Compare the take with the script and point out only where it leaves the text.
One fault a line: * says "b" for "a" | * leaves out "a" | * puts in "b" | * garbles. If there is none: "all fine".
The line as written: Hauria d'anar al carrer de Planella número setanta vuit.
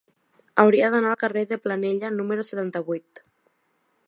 all fine